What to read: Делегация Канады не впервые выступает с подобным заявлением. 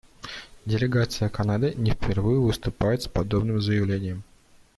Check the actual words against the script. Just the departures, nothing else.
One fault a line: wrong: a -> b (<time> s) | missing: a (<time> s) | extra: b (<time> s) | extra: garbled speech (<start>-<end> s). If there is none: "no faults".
no faults